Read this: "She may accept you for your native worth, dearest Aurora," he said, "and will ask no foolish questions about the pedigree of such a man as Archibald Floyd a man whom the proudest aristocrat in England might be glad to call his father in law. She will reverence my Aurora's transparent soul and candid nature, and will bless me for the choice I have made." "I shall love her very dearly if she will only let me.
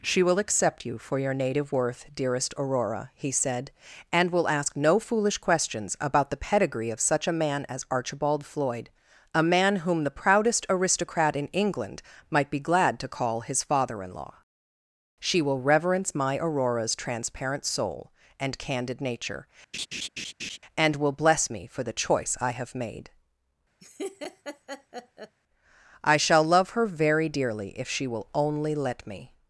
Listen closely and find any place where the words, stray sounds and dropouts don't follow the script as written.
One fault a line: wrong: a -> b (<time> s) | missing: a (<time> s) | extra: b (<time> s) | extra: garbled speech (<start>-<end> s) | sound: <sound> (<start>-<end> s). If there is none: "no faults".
wrong: may -> will (0.2 s)
sound: laugh (19.7-20.6 s)
sound: laugh (23.8-25.4 s)